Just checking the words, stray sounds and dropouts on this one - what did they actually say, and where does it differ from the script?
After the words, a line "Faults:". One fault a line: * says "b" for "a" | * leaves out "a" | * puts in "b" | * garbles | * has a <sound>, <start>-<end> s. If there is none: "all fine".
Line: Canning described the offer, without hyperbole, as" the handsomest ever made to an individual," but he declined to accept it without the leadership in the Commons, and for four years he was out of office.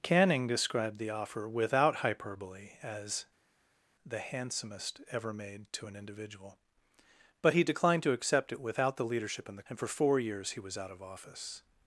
Canning described the offer, without hyperbole, as" the handsomest ever made to an individual," but he declined to accept it without the leadership in the And for four years he was out of office.
Faults:
* leaves out "Commons"